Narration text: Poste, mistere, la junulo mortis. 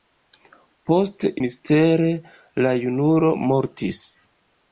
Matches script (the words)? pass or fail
pass